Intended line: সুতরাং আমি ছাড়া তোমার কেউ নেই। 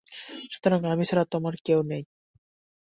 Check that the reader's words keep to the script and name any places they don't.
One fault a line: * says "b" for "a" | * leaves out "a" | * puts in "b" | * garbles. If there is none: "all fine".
all fine